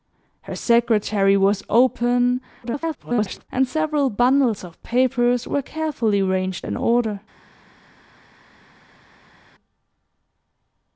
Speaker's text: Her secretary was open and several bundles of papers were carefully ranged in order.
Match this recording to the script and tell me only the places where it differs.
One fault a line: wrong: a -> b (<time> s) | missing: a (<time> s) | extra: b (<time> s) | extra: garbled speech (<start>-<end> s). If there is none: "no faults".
extra: garbled speech (2.6-3.5 s)